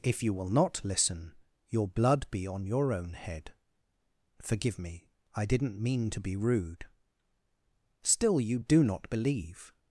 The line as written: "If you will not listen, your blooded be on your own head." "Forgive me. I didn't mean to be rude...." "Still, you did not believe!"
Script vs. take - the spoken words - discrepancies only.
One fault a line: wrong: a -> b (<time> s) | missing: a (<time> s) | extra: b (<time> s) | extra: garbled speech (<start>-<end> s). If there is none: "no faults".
wrong: blooded -> blood (1.9 s)
wrong: did -> do (8.6 s)